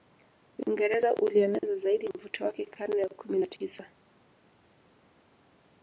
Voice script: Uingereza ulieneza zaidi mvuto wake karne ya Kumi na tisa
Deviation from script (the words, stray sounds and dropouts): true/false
false